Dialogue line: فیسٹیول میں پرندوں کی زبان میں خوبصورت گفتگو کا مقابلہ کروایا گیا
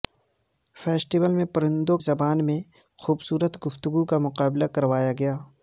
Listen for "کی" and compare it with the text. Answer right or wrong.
wrong